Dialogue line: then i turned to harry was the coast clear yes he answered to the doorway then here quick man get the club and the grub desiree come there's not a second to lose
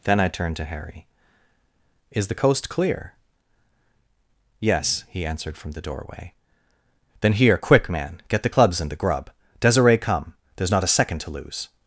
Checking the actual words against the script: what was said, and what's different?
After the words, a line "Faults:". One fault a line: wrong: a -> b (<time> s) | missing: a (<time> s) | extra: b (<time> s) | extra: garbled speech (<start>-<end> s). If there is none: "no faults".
then i turned to harry is the coast clear yes he answered from the doorway then here quick man get the clubs and the grub desiree come there's not a second to lose
Faults:
wrong: was -> is (2.1 s)
wrong: to -> from (5.6 s)
wrong: club -> clubs (8.5 s)